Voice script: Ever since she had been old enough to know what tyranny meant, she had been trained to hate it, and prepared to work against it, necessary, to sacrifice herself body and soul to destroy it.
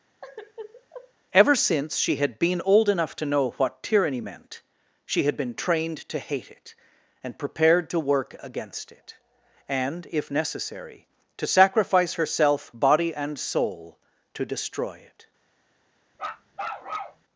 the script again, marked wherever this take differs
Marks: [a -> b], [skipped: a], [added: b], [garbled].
Ever since she had been old enough to know what tyranny meant, she had been trained to hate it, and prepared to work against it, [added: and if] necessary, to sacrifice herself body and soul to destroy it.